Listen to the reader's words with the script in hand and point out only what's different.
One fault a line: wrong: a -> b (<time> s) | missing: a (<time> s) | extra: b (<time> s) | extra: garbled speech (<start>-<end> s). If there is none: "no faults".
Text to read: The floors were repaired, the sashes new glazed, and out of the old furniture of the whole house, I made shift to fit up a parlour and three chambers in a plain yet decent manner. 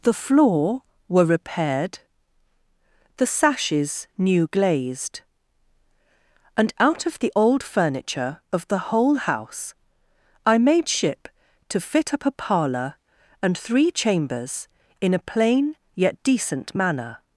wrong: floors -> floor (0.1 s)
wrong: shift -> ship (10.9 s)